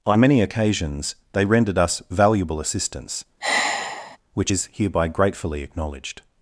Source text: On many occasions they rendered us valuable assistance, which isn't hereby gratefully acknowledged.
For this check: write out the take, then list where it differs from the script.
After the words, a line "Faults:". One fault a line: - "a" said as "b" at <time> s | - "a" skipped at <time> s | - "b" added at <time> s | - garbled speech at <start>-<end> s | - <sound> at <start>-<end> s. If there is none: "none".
On many occasions they rendered us valuable assistance, which is hereby gratefully acknowledged.
Faults:
- sigh at 3.4-4.2 s
- "isn't" said as "is" at 4.5 s